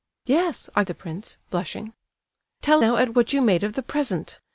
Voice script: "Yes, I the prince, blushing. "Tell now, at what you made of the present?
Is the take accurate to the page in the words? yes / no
yes